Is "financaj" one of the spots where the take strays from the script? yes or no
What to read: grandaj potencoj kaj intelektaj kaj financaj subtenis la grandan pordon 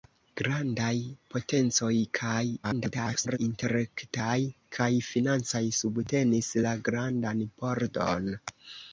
no